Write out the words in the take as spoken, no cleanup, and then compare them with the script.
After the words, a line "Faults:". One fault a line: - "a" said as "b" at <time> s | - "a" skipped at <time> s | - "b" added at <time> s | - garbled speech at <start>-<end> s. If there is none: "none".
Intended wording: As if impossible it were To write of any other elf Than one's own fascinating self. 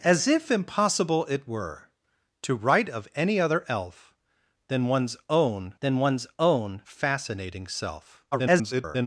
As if impossible it were To write of any other elf Than one's own Than one's own fascinating self. [garbled]
Faults:
- "Than one's own" added at 5.8 s
- garbled speech at 8.3-9.1 s